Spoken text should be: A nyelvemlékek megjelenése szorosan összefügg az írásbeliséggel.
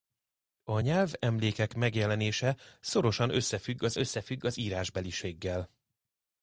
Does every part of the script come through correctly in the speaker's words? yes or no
no